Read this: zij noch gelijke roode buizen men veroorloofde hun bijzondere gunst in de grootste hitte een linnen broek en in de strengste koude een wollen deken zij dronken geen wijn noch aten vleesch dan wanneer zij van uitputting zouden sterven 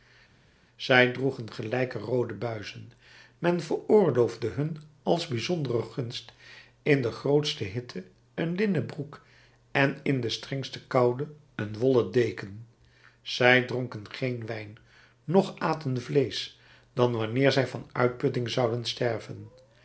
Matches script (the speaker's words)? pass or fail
fail